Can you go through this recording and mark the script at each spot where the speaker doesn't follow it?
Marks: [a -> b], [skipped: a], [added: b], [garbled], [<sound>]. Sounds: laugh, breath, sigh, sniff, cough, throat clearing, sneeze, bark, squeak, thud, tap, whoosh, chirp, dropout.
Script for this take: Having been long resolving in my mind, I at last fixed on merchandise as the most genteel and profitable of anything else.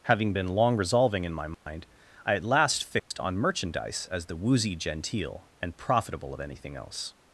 Having been long resolving in my mind, [dropout] I at last fixed [dropout] on merchandise as the [most -> woozy] genteel and profitable of anything else.